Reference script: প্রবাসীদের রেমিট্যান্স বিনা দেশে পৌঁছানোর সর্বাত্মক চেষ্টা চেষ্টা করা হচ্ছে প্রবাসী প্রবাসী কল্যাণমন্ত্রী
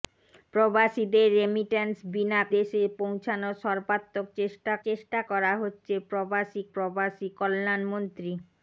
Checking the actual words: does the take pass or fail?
pass